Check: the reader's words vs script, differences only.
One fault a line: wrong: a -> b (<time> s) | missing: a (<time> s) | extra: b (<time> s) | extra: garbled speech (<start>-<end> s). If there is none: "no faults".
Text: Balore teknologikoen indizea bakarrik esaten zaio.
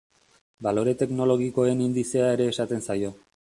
wrong: bakarrik -> ere (2.4 s)